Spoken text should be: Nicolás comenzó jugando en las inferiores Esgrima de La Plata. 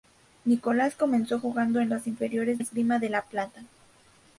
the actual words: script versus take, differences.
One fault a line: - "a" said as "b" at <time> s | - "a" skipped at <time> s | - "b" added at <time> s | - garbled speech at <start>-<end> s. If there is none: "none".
none